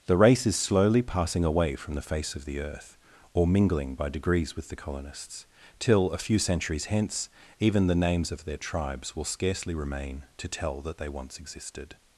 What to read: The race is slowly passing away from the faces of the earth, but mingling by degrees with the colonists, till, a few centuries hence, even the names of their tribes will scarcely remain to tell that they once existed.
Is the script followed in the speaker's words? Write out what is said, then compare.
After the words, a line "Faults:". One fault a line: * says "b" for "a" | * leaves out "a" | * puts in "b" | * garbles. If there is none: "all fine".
The race is slowly passing away from the face of the earth, or mingling by degrees with the colonists, till, a few centuries hence, even the names of their tribes will scarcely remain to tell that they once existed.
Faults:
* says "face" for "faces"
* says "or" for "but"